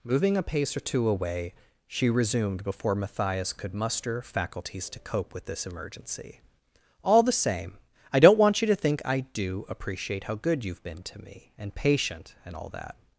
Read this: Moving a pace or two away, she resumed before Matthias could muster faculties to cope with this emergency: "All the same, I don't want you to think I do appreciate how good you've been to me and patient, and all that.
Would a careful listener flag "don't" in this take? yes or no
no